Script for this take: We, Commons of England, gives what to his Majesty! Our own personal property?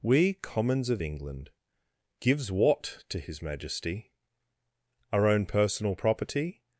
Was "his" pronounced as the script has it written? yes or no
yes